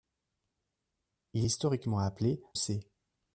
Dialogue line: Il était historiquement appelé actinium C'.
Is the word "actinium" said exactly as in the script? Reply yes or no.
no